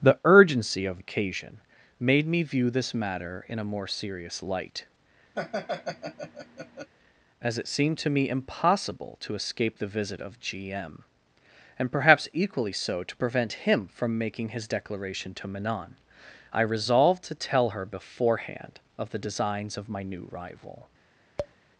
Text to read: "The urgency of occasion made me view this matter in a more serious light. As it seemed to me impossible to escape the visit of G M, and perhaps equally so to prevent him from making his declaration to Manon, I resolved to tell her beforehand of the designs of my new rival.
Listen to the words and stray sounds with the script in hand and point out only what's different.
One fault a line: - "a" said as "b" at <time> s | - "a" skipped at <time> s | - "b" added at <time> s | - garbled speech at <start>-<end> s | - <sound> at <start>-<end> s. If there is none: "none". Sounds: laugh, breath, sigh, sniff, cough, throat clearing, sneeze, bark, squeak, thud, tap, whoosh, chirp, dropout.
- laugh at 5.3-6.9 s
- tap at 21.4-21.5 s